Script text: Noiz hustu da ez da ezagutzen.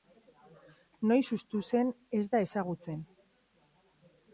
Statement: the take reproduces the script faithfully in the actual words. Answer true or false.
false